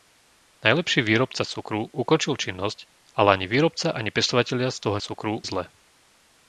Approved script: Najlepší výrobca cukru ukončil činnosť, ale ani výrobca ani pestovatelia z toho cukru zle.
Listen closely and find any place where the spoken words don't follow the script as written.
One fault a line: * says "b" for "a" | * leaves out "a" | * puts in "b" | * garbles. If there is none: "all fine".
all fine